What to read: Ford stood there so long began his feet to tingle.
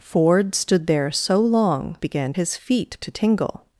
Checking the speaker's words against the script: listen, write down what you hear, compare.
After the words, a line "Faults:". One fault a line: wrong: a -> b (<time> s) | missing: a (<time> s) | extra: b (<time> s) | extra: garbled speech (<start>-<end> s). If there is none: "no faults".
Ford stood there so long began his feet to tingle.
Faults:
no faults